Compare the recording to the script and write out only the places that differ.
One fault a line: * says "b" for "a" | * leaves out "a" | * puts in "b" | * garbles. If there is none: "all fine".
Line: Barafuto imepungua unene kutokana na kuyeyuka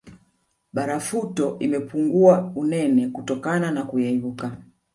all fine